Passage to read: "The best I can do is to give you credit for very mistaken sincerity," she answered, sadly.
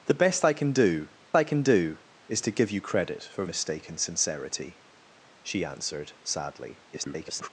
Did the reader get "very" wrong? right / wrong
wrong